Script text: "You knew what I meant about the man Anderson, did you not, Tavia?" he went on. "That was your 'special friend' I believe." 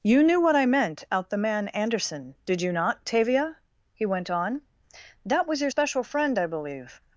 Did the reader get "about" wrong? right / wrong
wrong